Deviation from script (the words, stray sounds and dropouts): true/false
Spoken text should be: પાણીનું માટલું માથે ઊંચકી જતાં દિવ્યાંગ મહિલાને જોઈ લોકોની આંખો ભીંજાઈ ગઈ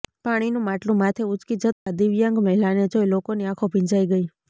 true